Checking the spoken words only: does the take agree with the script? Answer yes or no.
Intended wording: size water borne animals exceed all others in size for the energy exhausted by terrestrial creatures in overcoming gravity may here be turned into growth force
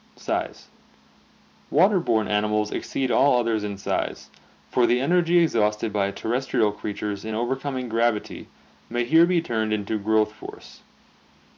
yes